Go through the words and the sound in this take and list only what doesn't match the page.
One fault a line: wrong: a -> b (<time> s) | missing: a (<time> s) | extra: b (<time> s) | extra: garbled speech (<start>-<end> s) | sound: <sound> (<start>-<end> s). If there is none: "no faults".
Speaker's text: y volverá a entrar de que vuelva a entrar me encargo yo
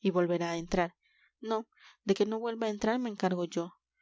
extra: no (1.4 s)
extra: no (2.3 s)